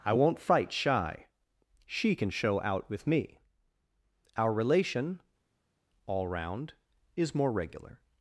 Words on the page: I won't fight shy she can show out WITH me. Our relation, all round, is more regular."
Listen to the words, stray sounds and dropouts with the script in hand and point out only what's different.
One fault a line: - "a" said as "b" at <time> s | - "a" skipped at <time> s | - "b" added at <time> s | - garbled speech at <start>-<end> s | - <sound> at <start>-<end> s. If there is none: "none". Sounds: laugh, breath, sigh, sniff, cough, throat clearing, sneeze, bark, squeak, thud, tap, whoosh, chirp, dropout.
none